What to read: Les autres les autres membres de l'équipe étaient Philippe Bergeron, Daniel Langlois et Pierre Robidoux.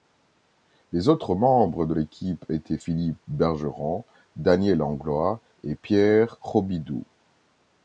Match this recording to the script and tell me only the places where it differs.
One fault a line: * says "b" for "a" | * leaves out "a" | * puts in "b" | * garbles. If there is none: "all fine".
* leaves out "les autres"